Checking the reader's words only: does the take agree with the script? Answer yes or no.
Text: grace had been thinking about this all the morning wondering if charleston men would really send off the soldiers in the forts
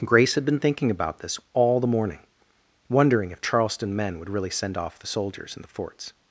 yes